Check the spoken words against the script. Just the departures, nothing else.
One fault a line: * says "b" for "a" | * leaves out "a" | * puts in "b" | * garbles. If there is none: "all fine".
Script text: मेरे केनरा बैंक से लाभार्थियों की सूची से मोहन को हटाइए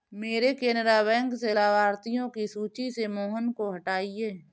all fine